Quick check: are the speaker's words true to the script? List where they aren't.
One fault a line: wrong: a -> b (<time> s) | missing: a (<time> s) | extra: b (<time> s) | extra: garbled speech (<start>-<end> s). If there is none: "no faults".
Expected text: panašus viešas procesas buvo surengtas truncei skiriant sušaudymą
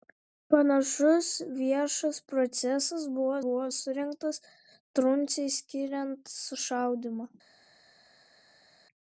extra: buvo (3.5 s)